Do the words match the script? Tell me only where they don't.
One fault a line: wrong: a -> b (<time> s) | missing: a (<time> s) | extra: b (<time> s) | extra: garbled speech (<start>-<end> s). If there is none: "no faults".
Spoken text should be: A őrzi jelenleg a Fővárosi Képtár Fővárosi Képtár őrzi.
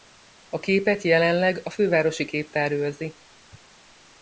wrong: őrzi -> képet (0.6 s)
missing: Fővárosi Képtár (2.7 s)